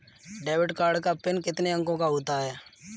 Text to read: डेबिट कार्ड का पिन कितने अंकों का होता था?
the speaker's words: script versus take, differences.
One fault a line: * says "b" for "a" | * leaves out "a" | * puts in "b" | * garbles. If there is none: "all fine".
* says "है" for "था"